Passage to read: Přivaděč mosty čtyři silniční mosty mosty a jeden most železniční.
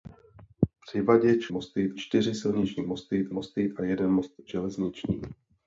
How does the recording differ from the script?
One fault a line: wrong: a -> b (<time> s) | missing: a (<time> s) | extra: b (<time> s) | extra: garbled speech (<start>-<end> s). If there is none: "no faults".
no faults